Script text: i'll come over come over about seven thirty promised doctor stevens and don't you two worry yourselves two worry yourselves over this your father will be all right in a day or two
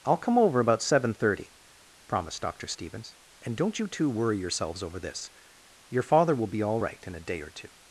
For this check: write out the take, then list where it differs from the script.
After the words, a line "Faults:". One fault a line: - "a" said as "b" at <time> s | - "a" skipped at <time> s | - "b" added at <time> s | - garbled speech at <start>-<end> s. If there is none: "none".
i'll come over about seven thirty promised doctor stevens and don't you two worry yourselves over this your father will be all right in a day or two
Faults:
- "come over" skipped at 0.6 s
- "two worry yourselves" skipped at 4.8 s